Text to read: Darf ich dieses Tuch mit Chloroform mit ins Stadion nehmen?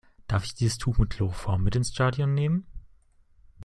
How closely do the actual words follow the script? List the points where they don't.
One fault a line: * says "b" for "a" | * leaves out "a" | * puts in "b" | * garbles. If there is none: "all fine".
all fine